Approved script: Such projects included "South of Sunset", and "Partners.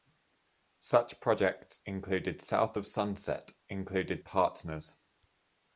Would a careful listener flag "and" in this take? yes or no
yes